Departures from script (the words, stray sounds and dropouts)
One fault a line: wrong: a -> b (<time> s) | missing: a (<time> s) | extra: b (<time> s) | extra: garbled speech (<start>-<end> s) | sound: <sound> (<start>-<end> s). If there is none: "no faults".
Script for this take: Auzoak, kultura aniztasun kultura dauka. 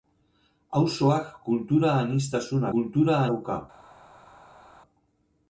no faults